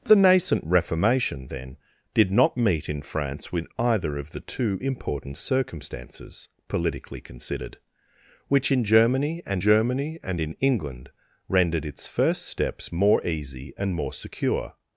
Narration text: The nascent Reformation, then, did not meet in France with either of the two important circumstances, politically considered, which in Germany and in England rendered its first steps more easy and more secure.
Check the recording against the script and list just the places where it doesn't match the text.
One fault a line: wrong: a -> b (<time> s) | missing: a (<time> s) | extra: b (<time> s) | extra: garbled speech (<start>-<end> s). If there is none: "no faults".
extra: Germany and (9.6 s)